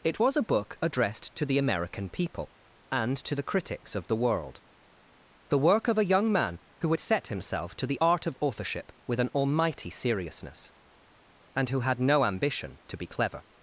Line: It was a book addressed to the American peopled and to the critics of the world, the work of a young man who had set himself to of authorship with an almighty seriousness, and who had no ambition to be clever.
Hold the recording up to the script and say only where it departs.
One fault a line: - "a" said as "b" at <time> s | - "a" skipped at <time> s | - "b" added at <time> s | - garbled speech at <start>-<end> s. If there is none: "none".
- "peopled" said as "people" at 2.1 s
- "the art" added at 7.9 s